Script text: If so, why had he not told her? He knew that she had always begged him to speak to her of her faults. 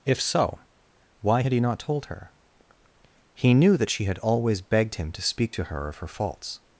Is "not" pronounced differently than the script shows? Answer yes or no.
no